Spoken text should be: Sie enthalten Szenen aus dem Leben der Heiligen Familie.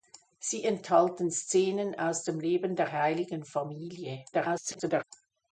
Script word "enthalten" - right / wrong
right